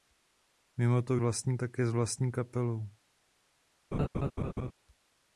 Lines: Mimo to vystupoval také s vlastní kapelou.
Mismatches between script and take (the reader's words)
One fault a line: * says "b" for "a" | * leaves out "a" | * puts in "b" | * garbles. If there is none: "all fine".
* says "vlastní" for "vystupoval"